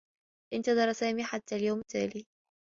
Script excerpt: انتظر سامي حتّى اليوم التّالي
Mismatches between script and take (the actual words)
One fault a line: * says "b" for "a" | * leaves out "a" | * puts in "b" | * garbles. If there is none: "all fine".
all fine